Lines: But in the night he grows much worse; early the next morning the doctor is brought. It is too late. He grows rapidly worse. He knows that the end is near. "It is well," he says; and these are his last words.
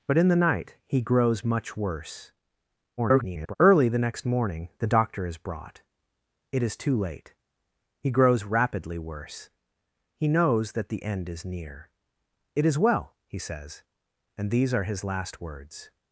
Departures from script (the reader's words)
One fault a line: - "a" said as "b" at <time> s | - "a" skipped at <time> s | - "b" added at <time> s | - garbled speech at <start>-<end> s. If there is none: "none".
- garbled speech at 3.0-3.5 s